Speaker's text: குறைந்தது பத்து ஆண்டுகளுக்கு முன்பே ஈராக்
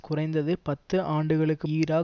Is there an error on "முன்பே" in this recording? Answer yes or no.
yes